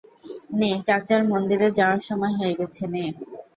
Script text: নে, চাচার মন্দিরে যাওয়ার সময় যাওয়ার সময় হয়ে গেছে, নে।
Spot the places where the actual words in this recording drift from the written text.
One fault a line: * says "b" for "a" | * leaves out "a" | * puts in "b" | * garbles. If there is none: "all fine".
* leaves out "যাওয়ার সময়"